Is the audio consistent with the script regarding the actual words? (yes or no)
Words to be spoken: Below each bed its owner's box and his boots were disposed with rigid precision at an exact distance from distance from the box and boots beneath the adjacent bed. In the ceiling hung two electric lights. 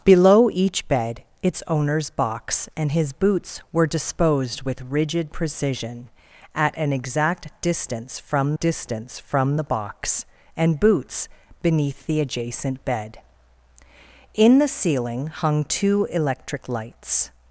yes